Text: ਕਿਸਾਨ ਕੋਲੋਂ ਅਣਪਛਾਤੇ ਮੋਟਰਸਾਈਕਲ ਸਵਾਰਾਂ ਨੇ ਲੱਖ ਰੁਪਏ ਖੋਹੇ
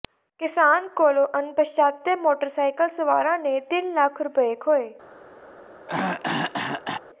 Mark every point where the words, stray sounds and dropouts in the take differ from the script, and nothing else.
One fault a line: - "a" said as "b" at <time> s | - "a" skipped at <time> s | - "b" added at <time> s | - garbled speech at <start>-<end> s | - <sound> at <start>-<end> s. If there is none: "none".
- "ਤਿੰਨ" added at 3.6 s
- throat clearing at 5.9-7.0 s